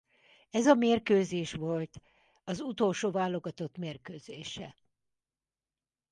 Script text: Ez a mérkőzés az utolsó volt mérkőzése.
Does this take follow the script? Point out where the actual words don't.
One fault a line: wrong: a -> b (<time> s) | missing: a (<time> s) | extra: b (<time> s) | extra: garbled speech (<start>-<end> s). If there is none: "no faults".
extra: volt (1.5 s)
wrong: volt -> válogatott (3.1 s)